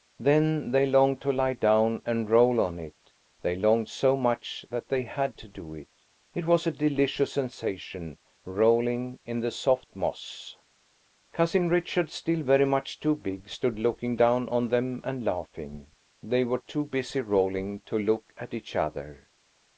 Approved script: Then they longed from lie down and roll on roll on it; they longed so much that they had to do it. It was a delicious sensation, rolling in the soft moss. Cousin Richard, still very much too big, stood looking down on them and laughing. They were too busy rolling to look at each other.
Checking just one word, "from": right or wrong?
wrong